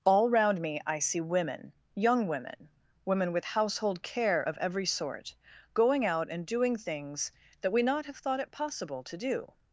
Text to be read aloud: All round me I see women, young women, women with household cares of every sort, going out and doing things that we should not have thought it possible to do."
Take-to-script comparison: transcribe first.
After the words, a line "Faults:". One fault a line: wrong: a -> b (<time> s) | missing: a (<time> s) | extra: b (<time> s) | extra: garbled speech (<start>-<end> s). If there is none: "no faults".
All round me I see women, young women, women with household care of every sort, going out and doing things that we not have thought it possible to do."
Faults:
wrong: cares -> care (4.0 s)
missing: should (7.8 s)